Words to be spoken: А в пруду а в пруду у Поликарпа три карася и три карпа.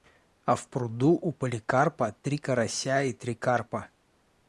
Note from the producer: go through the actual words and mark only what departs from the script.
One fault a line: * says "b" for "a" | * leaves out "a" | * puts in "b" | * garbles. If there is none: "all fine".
* leaves out "а в пруду"